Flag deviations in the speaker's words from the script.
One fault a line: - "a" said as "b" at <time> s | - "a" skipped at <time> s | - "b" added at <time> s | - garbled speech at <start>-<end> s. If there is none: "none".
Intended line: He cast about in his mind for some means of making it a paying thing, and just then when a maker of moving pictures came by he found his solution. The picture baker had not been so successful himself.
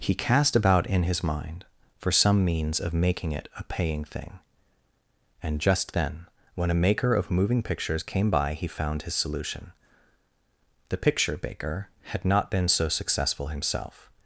none